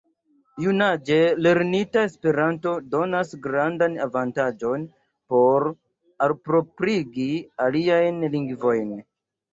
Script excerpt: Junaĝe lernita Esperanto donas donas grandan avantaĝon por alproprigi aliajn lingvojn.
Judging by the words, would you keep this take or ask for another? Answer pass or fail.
fail